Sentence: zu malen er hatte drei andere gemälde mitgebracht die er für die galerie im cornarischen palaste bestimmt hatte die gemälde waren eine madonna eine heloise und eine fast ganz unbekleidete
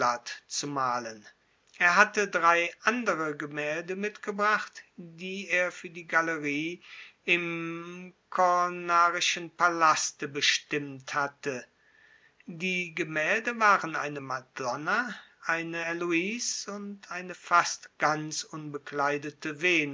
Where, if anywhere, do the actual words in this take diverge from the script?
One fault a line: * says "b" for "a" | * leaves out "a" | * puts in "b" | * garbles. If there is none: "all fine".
all fine